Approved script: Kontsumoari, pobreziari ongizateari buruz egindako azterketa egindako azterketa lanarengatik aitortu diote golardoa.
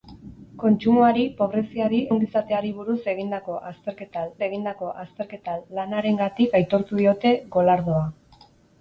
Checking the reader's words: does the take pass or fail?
pass